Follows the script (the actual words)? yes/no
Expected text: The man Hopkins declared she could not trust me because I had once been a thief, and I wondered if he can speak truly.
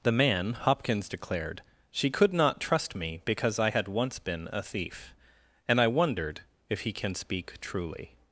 yes